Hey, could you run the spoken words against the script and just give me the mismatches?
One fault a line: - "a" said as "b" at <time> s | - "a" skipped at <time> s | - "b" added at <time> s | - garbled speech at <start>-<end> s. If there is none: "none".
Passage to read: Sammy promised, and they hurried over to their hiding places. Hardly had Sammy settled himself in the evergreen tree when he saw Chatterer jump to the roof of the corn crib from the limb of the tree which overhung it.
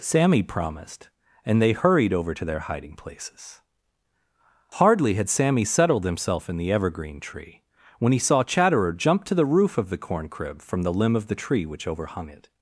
none